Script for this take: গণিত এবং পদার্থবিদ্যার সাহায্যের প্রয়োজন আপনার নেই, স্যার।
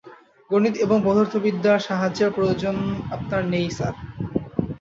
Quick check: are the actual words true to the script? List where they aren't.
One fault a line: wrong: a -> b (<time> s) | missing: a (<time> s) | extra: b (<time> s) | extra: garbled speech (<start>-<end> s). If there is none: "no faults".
no faults